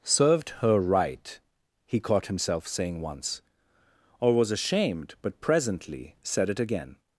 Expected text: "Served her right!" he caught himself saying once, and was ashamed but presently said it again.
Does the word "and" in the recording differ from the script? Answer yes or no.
yes